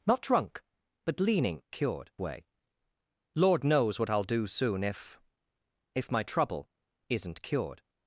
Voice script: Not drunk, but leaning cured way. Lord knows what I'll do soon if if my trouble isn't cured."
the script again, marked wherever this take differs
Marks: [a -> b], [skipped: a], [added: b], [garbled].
Not drunk, but leaning cured way. Lord knows what I'll do soon if if my trouble isn't cured."